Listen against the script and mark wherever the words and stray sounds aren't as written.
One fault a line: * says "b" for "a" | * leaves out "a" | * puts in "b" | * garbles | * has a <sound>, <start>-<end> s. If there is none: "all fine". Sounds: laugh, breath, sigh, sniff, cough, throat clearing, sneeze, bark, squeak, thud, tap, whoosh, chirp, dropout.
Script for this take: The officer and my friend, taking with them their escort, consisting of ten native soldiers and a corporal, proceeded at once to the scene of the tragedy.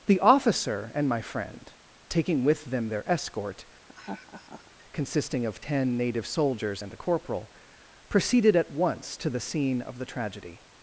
* has a laugh, 3.9-4.7 s